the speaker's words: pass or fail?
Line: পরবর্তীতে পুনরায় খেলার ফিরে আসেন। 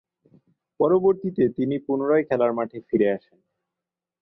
fail